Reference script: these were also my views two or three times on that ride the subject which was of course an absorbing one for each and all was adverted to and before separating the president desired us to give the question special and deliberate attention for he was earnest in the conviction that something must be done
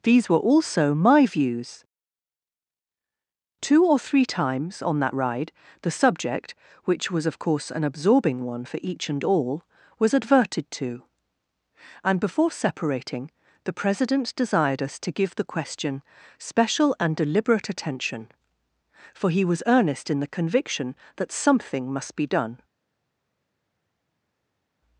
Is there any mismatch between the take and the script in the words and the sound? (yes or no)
no